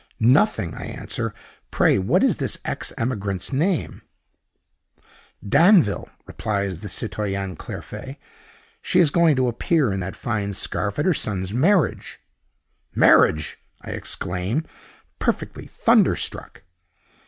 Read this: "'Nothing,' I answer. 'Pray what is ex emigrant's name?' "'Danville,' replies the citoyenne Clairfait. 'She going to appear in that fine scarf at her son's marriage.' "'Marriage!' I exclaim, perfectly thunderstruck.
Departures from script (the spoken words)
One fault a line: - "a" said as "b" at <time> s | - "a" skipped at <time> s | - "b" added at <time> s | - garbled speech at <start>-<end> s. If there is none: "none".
- "this" added at 2.4 s
- "is" added at 9.0 s